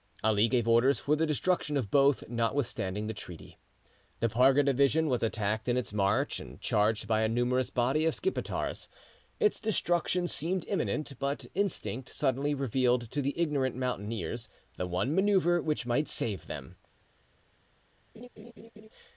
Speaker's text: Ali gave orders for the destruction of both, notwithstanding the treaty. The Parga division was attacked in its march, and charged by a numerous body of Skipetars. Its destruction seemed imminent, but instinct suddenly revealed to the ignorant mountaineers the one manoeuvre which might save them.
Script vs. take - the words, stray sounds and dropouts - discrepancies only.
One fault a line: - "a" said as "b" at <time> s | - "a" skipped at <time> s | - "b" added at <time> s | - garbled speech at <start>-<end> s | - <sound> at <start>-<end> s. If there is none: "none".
- laugh at 18.1-18.9 s